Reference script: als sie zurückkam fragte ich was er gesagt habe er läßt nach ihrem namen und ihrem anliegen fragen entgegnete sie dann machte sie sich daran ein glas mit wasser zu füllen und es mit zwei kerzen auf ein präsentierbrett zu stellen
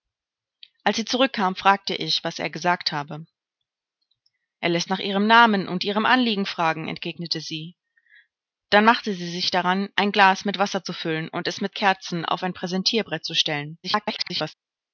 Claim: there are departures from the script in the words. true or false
true